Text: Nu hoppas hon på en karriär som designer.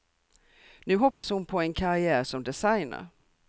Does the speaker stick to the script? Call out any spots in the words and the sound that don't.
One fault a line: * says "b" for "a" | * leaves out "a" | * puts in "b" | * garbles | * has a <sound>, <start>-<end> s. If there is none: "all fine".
* has a dropout, 1.1-1.2 s